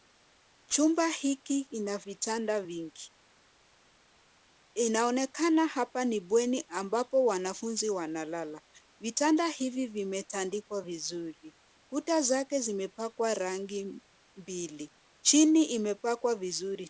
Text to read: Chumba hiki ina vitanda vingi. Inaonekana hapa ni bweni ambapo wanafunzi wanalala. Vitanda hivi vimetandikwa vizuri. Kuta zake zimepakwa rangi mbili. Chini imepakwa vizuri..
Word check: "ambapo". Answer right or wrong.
right